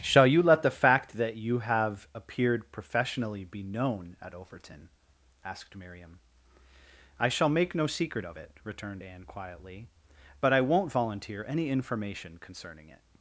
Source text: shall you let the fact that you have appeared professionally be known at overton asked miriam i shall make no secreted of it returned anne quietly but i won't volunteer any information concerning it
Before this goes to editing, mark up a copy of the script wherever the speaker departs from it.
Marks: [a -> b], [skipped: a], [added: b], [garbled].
shall you let the fact that you have appeared professionally be known at overton asked miriam i shall make no [secreted -> secret] of it returned anne quietly but i won't volunteer any information concerning it